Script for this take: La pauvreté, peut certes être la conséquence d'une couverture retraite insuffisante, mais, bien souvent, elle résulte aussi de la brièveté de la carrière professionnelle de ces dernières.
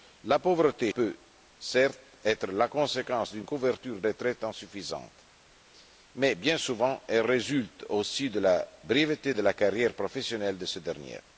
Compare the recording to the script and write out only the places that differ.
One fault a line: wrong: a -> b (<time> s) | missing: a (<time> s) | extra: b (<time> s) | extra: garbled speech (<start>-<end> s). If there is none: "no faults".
no faults